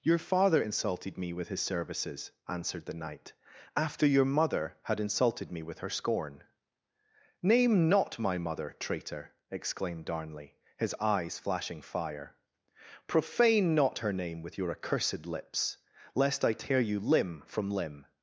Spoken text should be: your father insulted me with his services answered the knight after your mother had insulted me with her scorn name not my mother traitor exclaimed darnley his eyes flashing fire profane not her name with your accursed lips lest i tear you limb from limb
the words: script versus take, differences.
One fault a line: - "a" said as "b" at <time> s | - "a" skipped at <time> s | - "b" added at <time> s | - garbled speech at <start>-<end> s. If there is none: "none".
none